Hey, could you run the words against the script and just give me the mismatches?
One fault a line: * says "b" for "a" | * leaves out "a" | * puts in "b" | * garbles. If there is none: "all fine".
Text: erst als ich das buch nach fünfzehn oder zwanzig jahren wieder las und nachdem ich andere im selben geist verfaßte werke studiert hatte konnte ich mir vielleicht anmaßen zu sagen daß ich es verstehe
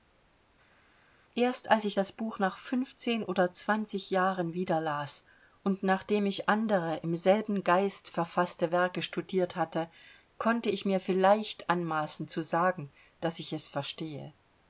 all fine